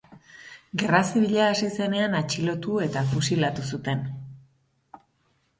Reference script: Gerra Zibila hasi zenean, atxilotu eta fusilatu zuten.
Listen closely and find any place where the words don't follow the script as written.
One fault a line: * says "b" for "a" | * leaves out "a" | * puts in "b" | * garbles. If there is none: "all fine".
all fine